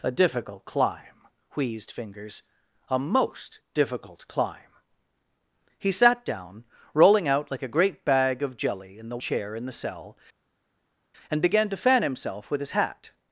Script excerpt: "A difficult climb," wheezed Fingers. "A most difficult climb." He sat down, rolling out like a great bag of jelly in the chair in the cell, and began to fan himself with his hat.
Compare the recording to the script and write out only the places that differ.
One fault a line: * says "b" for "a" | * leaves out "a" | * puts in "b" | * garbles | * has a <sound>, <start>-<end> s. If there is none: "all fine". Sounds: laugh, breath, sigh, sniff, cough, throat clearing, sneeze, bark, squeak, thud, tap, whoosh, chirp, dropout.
all fine